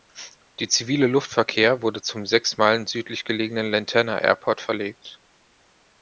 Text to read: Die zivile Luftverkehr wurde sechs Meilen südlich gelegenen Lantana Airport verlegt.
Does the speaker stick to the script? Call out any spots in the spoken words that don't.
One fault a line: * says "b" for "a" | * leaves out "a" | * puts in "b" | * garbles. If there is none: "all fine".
* puts in "zum"